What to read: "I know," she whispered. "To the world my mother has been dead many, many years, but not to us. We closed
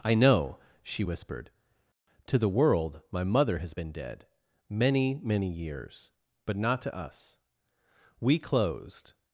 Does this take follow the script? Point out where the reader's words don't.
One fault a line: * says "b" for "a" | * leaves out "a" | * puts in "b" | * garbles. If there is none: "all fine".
all fine